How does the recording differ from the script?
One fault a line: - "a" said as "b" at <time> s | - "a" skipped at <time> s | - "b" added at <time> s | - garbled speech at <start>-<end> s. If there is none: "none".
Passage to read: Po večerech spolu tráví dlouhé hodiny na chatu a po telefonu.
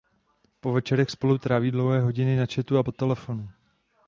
none